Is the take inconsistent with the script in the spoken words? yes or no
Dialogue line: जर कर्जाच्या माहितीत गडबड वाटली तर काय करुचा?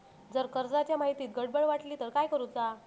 no